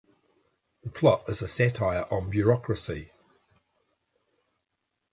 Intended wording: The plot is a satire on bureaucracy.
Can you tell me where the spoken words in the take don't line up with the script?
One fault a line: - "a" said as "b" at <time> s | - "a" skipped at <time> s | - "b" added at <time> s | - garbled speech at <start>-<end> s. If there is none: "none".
none